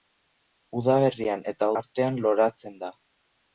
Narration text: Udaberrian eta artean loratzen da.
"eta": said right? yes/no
yes